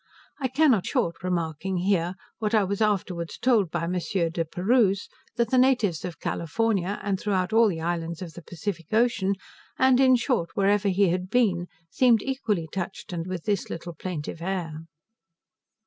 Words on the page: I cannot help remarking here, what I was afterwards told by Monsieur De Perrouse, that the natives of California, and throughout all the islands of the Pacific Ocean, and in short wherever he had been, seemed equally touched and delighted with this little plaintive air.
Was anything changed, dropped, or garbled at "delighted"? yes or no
yes